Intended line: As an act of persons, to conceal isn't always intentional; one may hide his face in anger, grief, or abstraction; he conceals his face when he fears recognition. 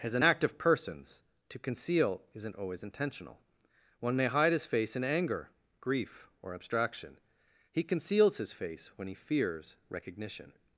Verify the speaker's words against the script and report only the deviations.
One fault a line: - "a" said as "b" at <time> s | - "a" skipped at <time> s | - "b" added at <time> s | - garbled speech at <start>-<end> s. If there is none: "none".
none